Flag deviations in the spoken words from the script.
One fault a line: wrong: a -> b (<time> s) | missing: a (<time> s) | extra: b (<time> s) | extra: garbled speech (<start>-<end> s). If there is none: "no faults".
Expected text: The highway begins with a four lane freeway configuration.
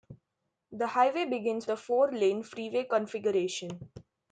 missing: with (1.7 s)